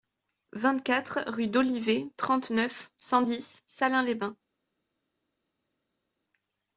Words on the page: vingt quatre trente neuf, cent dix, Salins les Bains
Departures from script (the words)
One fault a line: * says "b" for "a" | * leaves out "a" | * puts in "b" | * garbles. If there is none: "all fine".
* puts in "rue d'Olivet"